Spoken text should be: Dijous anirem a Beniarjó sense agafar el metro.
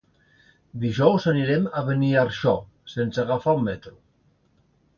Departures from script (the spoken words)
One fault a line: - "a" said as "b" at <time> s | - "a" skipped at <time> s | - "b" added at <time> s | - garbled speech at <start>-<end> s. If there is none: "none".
none